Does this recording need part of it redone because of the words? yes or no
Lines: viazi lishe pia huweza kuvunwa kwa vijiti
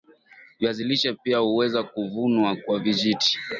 no